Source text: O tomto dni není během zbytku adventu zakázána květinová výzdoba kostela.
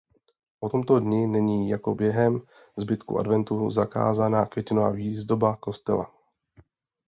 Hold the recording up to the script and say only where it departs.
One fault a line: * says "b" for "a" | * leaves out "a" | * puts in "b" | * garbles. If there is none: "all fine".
* puts in "jako"